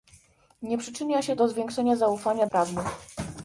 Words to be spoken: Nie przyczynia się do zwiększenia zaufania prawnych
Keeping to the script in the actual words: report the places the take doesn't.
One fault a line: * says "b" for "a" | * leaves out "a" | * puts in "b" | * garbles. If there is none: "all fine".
all fine